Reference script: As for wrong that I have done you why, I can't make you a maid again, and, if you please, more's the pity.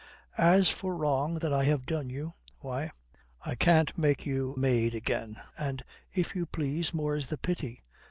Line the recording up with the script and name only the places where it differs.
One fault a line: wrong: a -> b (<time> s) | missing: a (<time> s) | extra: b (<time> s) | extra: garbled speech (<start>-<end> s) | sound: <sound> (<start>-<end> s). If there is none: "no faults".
missing: a (4.6 s)